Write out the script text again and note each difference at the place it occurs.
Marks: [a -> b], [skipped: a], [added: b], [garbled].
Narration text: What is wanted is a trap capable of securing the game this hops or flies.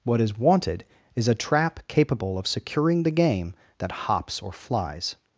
What is wanted is a trap capable of securing the game [this -> that] hops or flies.